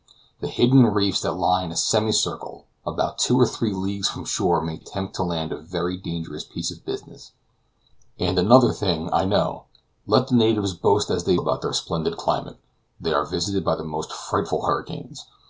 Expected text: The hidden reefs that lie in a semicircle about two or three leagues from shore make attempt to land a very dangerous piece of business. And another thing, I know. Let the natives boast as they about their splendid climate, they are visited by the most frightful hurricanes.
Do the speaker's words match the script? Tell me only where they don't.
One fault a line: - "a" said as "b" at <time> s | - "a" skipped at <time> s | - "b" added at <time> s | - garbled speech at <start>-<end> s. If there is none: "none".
none